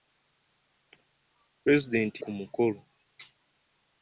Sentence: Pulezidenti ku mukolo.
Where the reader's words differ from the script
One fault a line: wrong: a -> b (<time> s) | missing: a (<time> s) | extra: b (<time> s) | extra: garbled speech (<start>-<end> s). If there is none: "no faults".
no faults